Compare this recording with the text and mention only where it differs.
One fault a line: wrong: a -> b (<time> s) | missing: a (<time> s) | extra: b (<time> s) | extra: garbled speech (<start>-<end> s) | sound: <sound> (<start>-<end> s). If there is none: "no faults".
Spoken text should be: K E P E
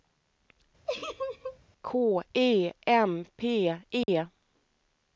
sound: laugh (0.9-1.6 s)
extra: M (2.9 s)
sound: dropout (4.0-4.1 s)